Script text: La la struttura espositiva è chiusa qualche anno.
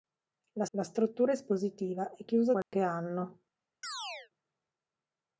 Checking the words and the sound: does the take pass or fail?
fail